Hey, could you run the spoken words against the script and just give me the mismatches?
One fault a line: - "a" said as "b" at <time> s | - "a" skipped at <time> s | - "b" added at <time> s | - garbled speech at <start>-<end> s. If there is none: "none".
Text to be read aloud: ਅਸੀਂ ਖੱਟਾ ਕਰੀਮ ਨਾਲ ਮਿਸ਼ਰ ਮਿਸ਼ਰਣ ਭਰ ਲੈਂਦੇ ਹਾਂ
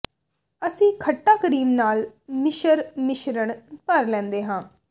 none